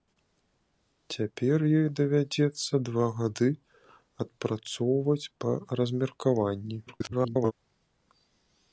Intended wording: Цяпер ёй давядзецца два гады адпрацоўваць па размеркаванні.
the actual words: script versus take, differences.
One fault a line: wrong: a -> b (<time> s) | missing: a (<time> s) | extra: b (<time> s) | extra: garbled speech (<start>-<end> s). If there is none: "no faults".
extra: garbled speech (6.9-7.5 s)